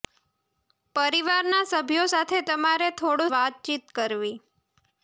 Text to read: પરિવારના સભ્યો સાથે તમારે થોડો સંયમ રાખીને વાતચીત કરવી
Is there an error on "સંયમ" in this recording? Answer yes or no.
yes